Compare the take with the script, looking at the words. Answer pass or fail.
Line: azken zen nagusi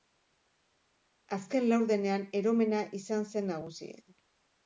fail